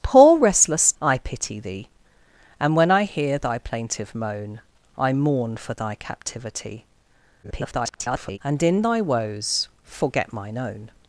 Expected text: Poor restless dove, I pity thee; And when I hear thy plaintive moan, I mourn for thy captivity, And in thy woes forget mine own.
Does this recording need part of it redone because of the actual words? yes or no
yes